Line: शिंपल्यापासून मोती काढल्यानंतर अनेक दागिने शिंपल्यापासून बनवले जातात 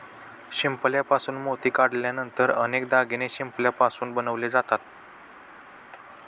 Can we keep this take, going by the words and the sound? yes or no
yes